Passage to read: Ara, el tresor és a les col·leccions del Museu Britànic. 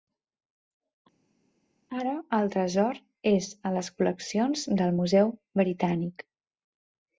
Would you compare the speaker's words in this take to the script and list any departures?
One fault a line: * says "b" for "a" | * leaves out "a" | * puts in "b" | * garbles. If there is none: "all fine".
all fine